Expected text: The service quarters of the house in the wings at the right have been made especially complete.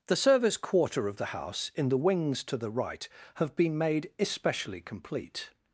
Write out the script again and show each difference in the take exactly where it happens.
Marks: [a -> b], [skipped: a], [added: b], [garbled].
The service [quarters -> quarter] of the house in the wings [at -> to] the right have been made especially complete.